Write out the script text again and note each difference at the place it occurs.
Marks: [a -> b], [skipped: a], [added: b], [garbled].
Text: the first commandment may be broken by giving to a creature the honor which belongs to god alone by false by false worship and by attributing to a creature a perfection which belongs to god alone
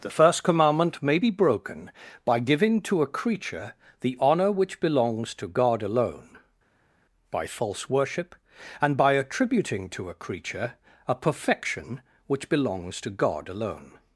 the first commandment may be broken by giving to a creature the honor which belongs to god alone by false [skipped: by false] worship and by attributing to a creature a perfection which belongs to god alone